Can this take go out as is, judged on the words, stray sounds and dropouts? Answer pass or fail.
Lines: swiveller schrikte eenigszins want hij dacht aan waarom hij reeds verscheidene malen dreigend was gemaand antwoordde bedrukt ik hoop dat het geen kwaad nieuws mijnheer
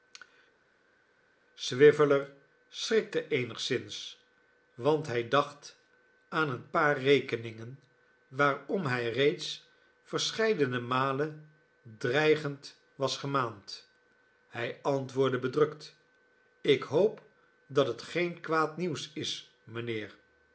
fail